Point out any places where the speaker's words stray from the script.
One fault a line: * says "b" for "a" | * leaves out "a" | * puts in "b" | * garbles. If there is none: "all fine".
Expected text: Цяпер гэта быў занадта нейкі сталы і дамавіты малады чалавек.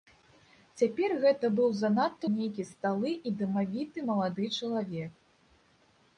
all fine